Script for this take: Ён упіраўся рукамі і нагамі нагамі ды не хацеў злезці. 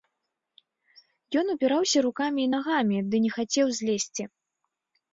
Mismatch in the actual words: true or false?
true